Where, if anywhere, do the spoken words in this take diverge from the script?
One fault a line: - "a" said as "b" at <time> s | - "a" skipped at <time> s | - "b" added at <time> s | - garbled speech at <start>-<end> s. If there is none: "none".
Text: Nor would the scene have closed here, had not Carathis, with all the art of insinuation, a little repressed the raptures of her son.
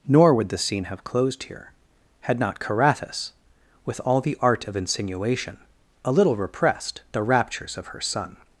none